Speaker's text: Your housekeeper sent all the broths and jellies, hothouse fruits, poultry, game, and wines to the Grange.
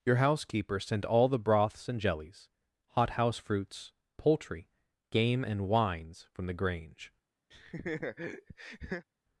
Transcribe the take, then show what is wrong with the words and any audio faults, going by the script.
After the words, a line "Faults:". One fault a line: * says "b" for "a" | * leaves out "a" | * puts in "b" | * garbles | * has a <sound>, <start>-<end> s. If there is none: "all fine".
Your housekeeper sent all the broths and jellies, hothouse fruits, poultry, game, and wines from the Grange.
Faults:
* says "from" for "to"
* has a laugh, 7.5-9.1 s